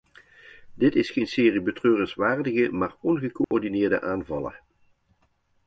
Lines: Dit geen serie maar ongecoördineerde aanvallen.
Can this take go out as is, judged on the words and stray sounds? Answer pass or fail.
fail